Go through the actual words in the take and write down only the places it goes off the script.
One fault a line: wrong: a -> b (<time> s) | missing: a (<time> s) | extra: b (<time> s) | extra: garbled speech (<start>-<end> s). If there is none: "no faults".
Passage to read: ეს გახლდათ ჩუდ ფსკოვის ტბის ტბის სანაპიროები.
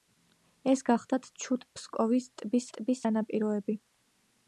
no faults